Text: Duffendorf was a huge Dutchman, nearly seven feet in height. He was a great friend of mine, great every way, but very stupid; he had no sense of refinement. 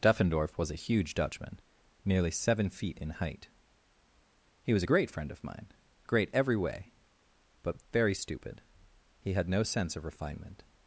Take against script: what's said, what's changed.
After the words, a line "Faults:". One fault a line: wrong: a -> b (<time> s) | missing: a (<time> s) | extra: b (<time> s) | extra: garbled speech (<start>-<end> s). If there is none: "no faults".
Duffendorf was a huge Dutchman, nearly seven feet in height. He was a great friend of mine, great every way, but very stupid; he had no sense of refinement.
Faults:
no faults